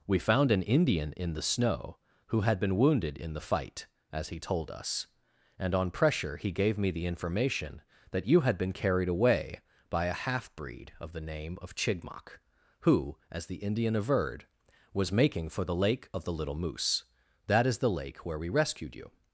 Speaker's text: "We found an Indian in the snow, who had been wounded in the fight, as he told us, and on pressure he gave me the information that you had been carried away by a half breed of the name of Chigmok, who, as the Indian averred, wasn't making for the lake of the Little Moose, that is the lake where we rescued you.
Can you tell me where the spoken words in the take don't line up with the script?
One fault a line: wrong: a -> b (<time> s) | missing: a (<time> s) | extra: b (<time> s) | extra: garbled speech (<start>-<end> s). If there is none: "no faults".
wrong: wasn't -> was (14.9 s)